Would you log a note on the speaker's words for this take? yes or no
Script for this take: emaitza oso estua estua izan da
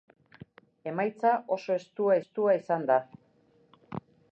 no